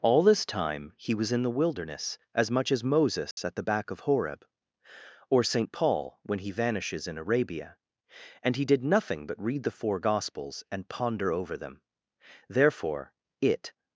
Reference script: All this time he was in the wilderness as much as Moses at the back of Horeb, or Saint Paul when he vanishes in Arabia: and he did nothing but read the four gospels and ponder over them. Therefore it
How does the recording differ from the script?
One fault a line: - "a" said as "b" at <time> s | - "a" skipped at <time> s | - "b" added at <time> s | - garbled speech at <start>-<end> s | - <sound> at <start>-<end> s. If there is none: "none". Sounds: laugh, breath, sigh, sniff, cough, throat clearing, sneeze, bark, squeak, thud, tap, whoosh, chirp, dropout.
- dropout at 3.3-3.4 s